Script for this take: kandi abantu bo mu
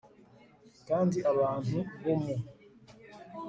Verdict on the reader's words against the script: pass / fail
pass